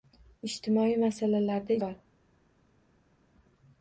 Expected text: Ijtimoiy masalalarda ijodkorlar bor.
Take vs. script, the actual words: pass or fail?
fail